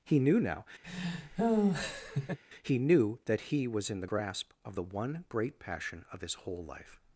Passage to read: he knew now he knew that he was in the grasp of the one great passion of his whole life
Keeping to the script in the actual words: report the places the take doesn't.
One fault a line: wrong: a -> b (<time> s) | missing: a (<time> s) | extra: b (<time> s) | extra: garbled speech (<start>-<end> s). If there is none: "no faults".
no faults